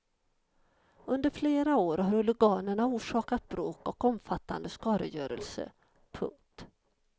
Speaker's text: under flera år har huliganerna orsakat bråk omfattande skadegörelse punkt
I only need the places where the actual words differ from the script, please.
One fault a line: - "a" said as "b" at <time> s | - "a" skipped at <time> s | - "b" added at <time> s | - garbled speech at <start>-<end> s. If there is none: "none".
- "och" added at 3.9 s